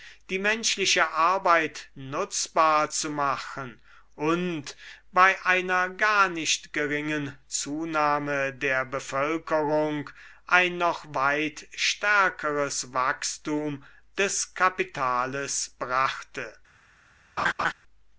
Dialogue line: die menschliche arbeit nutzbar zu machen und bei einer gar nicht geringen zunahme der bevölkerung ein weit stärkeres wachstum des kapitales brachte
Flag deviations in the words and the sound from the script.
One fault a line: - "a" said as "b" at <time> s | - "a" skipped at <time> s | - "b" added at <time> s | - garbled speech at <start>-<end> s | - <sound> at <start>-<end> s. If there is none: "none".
- "noch" added at 10.8 s
- laugh at 17.4-17.7 s